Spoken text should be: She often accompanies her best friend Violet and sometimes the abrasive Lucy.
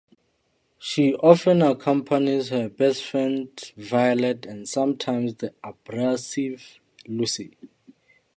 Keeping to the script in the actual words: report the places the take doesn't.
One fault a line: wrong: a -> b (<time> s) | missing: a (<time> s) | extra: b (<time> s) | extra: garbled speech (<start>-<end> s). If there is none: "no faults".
no faults